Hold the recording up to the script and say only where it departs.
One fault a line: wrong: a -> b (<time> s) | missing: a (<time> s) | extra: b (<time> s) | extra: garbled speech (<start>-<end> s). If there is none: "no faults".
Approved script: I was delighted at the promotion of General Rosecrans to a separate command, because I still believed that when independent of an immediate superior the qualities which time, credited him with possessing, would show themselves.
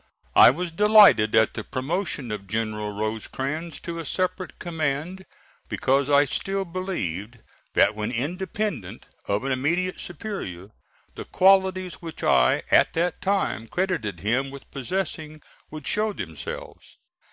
extra: I at that (12.2 s)